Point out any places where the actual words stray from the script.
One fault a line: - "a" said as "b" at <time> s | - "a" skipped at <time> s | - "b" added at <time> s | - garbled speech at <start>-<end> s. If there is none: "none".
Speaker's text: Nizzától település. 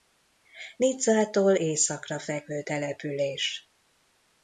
- "északra fekvő" added at 1.5 s